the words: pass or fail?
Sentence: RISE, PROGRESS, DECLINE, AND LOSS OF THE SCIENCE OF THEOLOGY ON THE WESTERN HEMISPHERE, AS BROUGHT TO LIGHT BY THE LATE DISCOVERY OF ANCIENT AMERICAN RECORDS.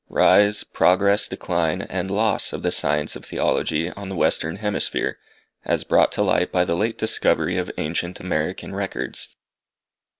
pass